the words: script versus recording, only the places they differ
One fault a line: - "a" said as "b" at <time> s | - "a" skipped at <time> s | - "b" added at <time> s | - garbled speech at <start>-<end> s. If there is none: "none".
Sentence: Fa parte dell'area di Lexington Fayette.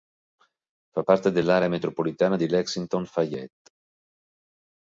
- "metropolitana" added at 1.7 s